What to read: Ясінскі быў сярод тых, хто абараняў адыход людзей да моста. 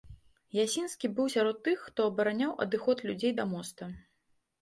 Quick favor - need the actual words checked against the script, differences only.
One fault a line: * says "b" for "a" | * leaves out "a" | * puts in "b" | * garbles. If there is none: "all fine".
all fine